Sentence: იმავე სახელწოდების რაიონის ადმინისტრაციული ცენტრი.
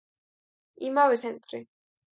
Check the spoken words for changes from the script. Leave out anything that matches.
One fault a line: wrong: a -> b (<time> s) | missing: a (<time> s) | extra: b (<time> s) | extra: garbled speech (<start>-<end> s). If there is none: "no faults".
missing: სახელწოდების რაიონის ადმინისტრაციული (1.2 s)